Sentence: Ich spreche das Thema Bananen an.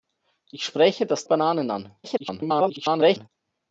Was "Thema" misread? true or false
true